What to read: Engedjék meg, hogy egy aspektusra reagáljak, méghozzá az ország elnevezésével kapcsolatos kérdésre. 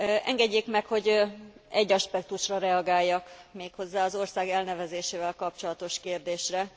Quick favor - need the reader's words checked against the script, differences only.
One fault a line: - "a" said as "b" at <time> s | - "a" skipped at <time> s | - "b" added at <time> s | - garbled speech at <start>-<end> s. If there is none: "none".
none